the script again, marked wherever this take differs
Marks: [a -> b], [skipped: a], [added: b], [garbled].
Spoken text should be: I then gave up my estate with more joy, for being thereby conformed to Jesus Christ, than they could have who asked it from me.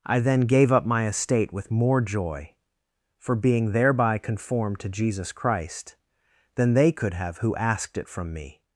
I then gave up my estate with more joy, for being thereby conformed to Jesus Christ, than they could have who asked it from me.